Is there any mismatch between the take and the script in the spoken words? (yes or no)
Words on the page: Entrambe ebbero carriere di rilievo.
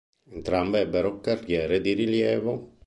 no